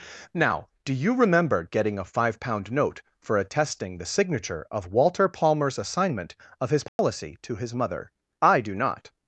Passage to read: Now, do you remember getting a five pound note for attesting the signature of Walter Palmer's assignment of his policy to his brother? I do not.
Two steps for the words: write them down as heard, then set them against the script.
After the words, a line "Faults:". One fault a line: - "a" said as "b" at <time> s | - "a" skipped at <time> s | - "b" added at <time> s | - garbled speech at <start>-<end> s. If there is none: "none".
Now, do you remember getting a five pound note for attesting the signature of Walter Palmer's assignment of his policy to his mother? I do not.
Faults:
- "brother" said as "mother" at 7.7 s